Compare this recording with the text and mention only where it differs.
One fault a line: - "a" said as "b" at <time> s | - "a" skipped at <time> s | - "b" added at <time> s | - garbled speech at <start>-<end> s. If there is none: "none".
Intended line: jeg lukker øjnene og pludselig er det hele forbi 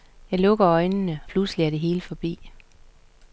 - "og" skipped at 1.2 s